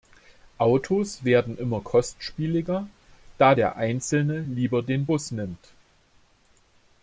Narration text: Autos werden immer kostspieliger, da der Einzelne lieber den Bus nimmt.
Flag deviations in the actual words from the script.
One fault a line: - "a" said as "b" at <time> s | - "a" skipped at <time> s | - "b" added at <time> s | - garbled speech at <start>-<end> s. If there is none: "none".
none